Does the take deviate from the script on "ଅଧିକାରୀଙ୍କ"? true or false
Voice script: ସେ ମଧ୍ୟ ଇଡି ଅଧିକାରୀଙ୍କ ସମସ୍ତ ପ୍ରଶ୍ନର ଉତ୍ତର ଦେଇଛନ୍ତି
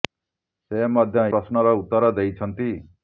true